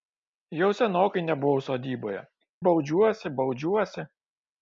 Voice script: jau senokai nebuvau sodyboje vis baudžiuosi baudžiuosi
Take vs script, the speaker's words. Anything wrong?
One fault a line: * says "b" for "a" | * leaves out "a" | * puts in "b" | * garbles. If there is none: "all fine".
* leaves out "vis"